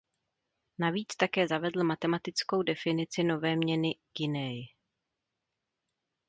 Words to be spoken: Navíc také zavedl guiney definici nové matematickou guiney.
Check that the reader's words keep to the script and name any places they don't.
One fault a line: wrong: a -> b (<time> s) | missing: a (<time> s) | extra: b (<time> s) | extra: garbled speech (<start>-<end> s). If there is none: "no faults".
wrong: guiney -> matematickou (1.8 s)
wrong: matematickou -> měny (3.6 s)